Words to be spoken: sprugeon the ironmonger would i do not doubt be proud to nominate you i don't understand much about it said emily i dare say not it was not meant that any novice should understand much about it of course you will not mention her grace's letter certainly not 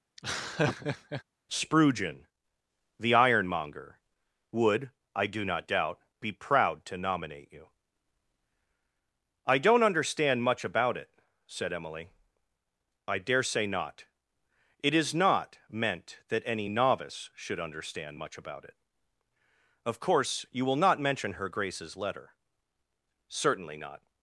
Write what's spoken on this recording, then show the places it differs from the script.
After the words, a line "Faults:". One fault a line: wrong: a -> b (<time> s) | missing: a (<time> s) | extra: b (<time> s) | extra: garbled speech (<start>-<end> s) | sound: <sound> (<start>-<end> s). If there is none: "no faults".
sprugeon the ironmonger would i do not doubt be proud to nominate you i don't understand much about it said emily i dare say not it is not meant that any novice should understand much about it of course you will not mention her grace's letter certainly not
Faults:
sound: laugh (0.2-1.2 s)
wrong: was -> is (14.9 s)